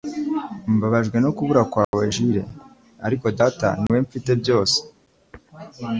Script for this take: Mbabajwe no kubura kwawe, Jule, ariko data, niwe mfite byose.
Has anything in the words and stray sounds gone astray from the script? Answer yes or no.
yes